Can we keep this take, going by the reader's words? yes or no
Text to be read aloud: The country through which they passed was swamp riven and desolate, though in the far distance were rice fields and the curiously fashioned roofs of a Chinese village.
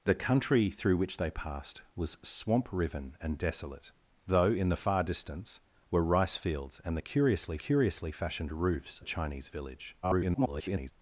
no